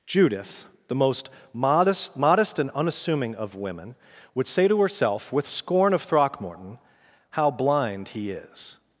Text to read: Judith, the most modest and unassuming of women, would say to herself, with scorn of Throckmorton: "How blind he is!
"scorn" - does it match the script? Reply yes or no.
yes